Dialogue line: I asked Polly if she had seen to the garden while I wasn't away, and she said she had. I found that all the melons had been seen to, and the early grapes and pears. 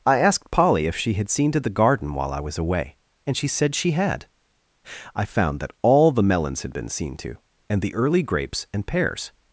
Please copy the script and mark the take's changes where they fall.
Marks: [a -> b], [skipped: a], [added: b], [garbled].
I asked Polly if she had seen to the garden while I [wasn't -> was] away, and she said she had. I found that all the melons had been seen to, and the early grapes and pears.